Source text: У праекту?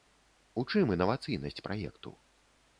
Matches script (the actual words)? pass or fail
fail